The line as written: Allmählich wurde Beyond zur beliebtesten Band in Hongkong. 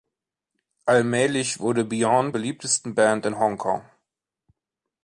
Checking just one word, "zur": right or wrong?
wrong